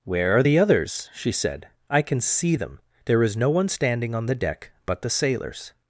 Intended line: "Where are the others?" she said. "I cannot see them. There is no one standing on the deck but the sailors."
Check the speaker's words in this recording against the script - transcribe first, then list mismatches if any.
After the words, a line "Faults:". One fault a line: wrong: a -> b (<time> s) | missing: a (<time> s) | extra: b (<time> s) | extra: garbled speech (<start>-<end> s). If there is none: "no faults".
"Where are the others?" she said. "I can see them. There is no one standing on the deck but the sailors."
Faults:
wrong: cannot -> can (2.0 s)